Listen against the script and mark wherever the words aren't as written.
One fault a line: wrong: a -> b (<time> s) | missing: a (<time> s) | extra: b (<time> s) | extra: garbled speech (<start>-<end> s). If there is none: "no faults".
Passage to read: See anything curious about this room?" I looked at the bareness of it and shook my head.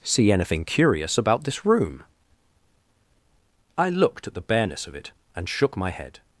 no faults